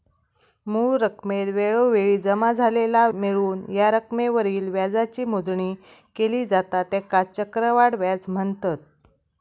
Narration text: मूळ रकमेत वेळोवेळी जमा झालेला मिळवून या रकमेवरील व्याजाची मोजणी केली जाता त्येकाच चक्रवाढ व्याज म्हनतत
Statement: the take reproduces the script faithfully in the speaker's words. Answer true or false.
true